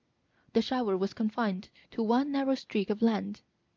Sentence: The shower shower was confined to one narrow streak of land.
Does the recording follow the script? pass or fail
fail